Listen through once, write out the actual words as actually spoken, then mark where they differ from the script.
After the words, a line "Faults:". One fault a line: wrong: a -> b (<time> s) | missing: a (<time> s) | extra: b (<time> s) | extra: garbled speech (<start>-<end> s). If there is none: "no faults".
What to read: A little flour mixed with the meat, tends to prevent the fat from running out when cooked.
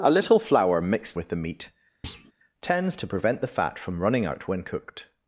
A little flour mixed with the meat, tends to prevent the fat from running out when cooked.
Faults:
no faults